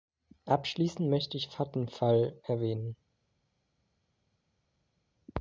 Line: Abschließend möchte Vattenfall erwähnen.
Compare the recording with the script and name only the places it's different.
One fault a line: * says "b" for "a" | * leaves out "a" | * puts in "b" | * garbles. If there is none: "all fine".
* puts in "ich"